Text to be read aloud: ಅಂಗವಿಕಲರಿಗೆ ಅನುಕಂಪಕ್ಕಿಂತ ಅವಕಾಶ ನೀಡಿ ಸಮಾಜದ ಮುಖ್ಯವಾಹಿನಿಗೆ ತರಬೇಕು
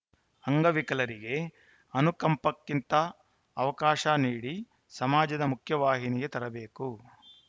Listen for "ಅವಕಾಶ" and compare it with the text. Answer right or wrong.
right